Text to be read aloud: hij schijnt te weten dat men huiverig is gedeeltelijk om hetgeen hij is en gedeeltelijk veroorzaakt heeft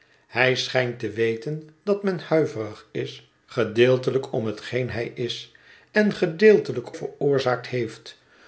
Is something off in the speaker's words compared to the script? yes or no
no